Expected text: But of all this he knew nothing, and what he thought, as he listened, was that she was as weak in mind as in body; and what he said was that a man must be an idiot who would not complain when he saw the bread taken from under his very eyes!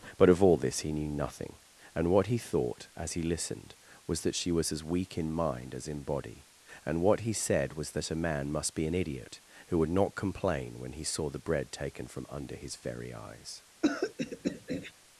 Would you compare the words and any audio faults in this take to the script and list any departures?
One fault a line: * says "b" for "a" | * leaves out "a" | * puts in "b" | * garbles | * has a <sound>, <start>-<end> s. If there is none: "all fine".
* has a throat clearing, 13.8-14.9 s